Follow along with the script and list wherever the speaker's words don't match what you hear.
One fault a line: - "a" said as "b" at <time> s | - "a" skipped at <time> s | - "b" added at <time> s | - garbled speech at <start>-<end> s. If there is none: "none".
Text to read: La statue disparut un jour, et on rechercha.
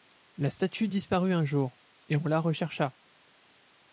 - "la" added at 2.2 s